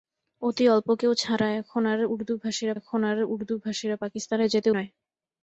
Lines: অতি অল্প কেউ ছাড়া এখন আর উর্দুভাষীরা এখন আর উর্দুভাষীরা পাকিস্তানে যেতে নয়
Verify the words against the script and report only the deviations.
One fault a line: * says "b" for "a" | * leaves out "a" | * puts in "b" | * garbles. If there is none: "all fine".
all fine